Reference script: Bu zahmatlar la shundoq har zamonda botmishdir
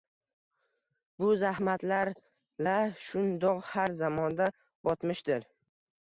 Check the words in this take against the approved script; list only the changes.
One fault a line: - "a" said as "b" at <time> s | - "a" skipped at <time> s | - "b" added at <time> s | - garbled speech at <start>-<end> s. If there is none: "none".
none